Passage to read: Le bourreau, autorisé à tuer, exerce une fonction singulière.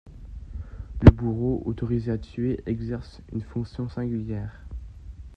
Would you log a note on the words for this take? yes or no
no